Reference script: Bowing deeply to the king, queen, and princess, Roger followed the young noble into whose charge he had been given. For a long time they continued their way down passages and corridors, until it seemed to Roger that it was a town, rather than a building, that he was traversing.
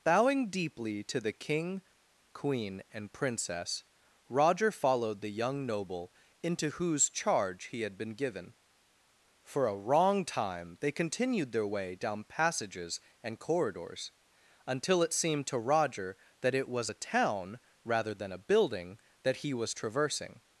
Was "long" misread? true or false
true